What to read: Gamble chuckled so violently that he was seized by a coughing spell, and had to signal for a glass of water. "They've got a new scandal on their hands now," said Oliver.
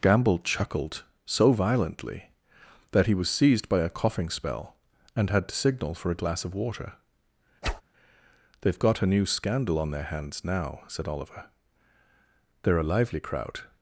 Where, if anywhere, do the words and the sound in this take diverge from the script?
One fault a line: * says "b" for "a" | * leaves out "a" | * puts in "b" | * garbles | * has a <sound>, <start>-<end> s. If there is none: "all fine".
* has a whoosh, 7.6-7.8 s
* puts in "They're a lively crowd"